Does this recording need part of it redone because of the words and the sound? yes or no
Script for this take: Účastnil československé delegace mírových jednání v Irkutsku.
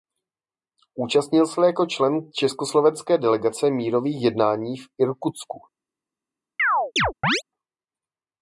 yes